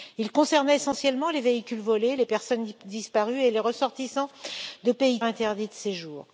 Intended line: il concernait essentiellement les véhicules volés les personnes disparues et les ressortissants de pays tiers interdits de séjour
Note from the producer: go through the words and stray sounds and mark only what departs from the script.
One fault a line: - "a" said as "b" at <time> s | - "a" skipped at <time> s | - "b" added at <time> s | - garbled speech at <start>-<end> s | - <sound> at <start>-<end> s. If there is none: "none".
- "tiers" skipped at 5.2 s